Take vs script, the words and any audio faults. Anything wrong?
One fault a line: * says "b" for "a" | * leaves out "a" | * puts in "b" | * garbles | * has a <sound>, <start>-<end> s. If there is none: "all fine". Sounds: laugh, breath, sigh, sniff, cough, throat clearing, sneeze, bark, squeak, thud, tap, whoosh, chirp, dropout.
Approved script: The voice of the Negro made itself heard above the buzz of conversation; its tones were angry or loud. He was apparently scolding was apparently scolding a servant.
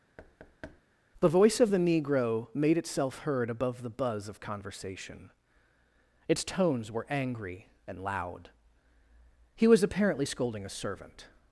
* has a thud, 0.2-0.8 s
* says "and" for "or"
* leaves out "was apparently scolding"